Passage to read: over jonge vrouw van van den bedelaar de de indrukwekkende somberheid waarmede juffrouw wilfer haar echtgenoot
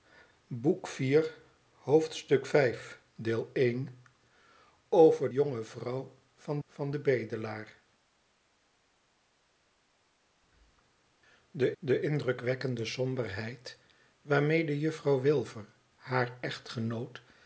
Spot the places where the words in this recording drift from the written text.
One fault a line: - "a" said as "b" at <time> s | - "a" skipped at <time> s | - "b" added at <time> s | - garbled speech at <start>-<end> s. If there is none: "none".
none